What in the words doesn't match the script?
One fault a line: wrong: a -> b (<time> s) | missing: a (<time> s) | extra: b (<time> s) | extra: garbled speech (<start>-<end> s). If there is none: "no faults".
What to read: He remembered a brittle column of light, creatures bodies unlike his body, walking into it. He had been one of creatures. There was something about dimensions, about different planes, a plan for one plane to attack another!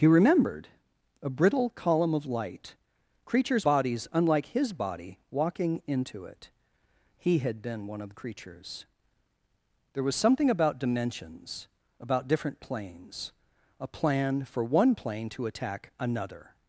no faults